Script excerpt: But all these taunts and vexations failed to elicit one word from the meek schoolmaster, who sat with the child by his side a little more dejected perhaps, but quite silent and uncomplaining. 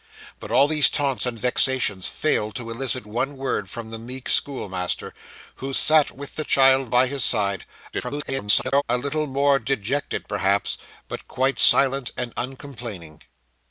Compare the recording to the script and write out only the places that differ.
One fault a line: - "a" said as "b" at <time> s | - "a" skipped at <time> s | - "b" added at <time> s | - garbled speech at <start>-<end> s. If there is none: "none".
- garbled speech at 7.9-8.8 s